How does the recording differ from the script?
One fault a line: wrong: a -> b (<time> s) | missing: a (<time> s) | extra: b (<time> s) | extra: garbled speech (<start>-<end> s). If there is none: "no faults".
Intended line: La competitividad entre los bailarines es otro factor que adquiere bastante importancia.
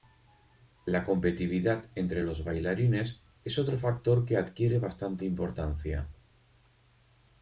no faults